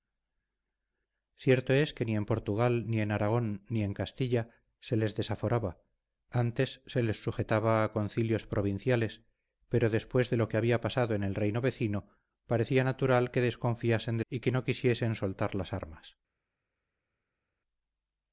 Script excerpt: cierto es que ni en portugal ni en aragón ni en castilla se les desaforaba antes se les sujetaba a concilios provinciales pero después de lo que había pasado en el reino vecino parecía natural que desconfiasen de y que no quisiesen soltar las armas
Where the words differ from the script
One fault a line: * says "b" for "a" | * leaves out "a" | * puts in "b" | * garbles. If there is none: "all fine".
all fine